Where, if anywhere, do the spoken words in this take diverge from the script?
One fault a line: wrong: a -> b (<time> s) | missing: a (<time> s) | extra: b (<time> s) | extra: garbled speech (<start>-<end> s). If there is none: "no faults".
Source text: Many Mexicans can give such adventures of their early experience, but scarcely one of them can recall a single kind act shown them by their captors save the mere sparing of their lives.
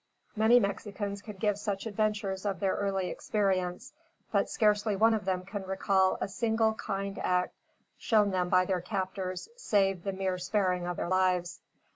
no faults